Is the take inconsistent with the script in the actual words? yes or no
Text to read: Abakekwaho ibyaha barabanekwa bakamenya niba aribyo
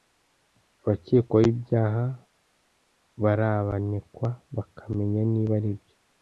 no